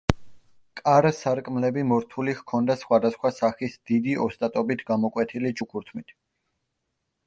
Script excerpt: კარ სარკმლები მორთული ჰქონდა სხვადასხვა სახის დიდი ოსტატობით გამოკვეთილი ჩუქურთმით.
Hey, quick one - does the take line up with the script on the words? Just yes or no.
yes